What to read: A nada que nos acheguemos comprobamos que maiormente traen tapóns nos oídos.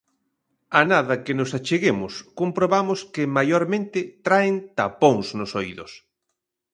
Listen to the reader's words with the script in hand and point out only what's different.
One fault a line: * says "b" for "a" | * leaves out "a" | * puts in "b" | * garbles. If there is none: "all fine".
all fine